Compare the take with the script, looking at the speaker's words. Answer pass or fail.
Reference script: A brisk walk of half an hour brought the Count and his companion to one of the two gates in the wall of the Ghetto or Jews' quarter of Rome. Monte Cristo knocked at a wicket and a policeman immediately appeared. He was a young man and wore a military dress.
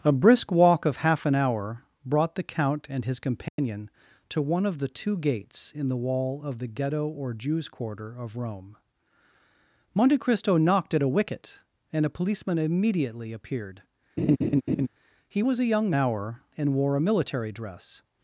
fail